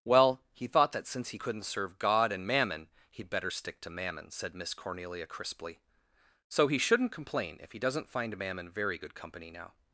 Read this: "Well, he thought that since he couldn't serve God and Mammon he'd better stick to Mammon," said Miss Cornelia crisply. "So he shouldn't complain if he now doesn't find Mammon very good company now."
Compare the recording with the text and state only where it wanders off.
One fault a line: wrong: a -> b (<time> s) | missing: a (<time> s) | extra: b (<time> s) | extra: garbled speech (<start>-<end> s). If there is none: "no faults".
missing: now (7.8 s)